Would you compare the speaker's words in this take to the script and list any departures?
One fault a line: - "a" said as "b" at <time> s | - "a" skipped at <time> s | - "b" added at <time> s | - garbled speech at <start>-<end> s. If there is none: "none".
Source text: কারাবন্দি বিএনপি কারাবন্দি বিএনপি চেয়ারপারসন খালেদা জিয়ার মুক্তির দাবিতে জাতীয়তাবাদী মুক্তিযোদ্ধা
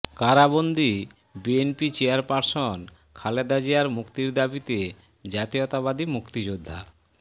- "কারাবন্দি বিএনপি" skipped at 1.9 s